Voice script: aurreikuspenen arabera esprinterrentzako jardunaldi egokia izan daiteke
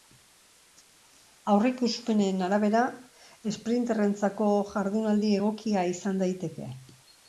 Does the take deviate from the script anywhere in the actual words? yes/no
no